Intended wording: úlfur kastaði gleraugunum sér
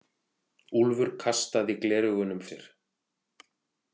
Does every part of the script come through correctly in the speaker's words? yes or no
yes